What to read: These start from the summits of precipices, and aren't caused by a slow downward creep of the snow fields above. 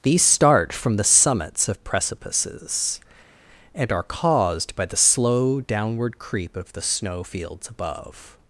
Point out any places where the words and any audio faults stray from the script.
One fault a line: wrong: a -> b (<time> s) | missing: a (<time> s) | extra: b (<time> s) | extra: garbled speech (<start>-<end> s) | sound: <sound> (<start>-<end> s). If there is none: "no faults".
wrong: aren't -> are (3.9 s)
wrong: a -> the (4.9 s)